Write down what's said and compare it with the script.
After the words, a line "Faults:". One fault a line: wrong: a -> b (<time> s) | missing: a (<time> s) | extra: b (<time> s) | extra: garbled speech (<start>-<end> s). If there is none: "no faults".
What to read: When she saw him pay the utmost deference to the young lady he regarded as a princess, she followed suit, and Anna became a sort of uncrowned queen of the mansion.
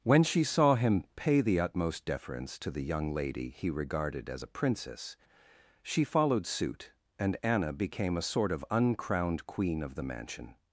When she saw him pay the utmost deference to the young lady he regarded as a princess, she followed suit, and Anna became a sort of uncrowned queen of the mansion.
Faults:
no faults